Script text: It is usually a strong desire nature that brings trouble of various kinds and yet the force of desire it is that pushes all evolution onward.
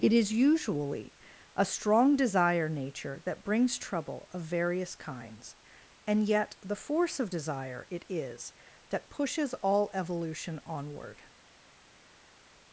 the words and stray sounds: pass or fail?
pass